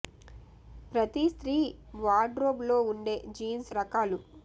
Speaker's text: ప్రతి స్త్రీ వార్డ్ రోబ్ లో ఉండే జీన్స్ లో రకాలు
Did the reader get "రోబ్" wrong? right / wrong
right